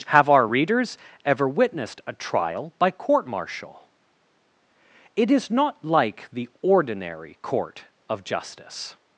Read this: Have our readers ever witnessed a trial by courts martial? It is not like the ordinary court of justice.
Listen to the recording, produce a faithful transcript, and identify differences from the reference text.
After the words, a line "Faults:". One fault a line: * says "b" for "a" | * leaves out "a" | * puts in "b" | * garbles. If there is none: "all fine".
Have our readers ever witnessed a trial by court martial? It is not like the ordinary court of justice.
Faults:
* says "court" for "courts"